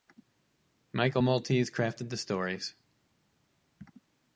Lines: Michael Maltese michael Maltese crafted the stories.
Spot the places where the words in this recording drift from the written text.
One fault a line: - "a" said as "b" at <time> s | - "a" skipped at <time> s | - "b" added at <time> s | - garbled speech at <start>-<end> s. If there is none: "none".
- "michael Maltese" skipped at 1.7 s